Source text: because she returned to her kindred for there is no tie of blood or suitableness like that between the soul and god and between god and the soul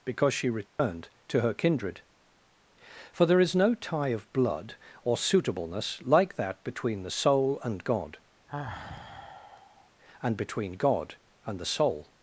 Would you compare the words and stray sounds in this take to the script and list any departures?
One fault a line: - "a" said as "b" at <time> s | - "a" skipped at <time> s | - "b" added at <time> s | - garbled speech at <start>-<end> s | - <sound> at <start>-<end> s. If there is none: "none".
- dropout at 0.7-0.8 s
- sigh at 8.5-9.9 s